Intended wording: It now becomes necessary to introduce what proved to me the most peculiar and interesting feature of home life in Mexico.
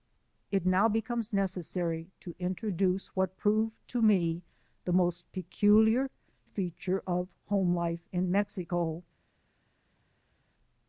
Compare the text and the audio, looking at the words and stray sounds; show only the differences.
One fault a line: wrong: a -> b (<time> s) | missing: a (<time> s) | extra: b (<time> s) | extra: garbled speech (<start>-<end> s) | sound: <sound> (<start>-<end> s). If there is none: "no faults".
missing: and interesting (6.1 s)